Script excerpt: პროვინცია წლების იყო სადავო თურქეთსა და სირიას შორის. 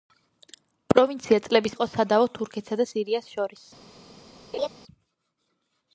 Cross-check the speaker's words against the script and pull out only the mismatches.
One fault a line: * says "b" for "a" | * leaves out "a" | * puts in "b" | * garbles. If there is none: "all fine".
all fine